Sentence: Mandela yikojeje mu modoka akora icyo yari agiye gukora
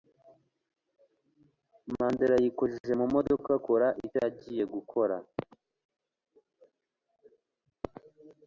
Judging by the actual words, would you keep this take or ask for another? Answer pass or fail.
fail